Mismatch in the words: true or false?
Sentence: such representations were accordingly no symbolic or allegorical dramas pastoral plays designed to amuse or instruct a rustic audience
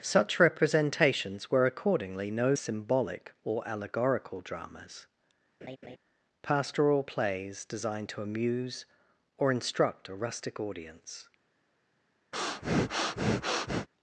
false